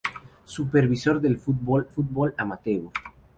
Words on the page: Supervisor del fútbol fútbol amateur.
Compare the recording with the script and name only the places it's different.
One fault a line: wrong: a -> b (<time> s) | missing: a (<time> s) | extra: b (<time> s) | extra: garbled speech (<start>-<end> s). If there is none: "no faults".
no faults